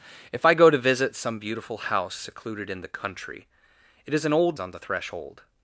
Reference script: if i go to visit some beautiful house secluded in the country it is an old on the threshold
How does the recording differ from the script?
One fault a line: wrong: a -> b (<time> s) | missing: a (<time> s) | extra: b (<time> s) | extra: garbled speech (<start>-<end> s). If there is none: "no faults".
no faults